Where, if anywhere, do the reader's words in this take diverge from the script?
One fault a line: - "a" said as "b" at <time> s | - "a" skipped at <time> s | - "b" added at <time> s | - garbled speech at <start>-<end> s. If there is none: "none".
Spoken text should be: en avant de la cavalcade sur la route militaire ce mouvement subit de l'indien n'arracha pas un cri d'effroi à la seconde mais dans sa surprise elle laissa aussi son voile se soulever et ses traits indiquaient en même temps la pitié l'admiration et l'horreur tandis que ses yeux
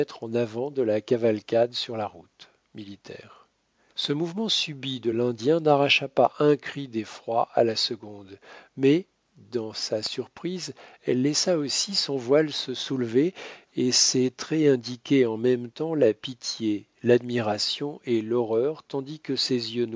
none